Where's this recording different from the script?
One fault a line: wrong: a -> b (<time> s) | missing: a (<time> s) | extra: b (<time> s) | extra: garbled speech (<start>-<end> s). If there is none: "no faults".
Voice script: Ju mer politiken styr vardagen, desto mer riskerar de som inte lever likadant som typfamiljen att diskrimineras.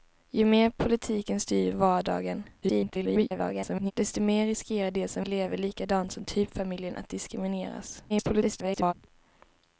extra: garbled speech (2.6-3.9 s)
missing: inte (5.3 s)
extra: garbled speech (8.1-8.9 s)